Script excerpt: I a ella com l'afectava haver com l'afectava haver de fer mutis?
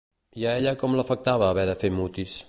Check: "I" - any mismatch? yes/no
no